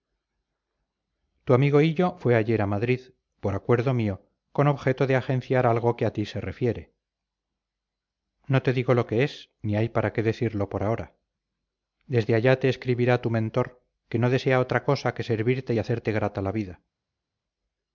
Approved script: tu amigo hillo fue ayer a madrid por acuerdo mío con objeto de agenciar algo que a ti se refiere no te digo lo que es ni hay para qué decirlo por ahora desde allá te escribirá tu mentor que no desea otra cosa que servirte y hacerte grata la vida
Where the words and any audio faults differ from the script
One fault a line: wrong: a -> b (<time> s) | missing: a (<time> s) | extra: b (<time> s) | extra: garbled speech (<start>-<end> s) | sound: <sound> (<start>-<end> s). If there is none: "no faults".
no faults